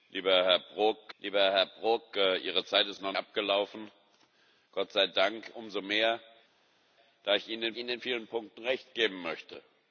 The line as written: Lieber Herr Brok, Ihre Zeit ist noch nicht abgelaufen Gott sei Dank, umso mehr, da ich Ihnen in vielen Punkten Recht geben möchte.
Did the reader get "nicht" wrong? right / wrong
wrong